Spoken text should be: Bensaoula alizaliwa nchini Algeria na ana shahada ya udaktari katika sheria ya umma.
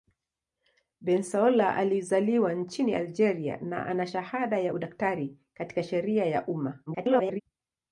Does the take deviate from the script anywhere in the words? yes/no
yes